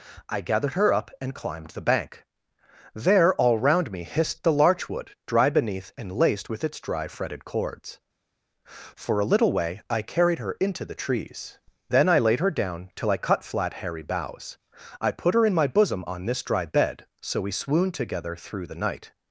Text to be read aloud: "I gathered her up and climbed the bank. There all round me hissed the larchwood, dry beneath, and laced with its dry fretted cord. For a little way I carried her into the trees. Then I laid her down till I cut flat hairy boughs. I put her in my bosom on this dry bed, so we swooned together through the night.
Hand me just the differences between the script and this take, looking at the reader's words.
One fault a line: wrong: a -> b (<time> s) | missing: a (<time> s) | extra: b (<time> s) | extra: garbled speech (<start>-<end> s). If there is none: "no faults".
wrong: cord -> cords (7.5 s)